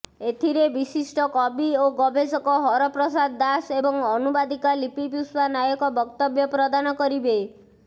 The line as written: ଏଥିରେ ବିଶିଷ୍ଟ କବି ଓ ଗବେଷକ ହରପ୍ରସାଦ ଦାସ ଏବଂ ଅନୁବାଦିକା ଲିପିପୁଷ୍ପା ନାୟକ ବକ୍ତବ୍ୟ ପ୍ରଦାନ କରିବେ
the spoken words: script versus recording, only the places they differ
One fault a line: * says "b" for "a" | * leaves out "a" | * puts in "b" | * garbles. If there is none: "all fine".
all fine